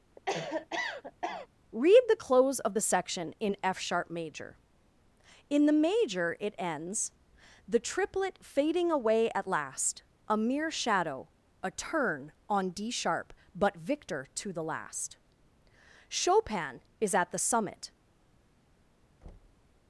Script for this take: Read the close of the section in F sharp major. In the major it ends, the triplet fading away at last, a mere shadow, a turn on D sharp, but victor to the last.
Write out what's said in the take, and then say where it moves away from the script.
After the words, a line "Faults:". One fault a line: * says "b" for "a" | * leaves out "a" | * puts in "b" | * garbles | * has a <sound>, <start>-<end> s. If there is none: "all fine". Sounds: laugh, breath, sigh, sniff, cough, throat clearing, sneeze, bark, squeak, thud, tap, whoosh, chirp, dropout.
Read the close of the section in F sharp major. In the major it ends, the triplet fading away at last, a mere shadow, a turn on D sharp, but victor to the last. Chopin is at the summit
Faults:
* has a cough, 0.2-1.5 s
* puts in "Chopin is at the summit"
* has a thud, 19.2-19.7 s